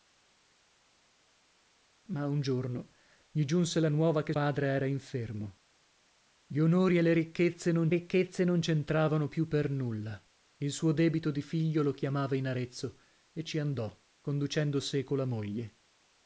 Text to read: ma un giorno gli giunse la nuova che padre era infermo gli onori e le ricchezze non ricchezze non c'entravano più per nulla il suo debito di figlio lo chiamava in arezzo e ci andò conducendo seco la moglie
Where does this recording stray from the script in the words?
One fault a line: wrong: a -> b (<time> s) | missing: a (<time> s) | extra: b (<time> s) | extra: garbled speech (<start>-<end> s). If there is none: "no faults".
no faults